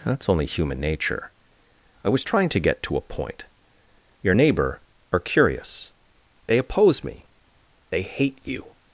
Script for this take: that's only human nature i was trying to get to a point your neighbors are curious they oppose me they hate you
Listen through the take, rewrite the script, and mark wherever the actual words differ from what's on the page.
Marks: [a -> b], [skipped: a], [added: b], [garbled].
that's only human nature i was trying to get to a point your [neighbors -> neighbor] are curious they oppose me they hate you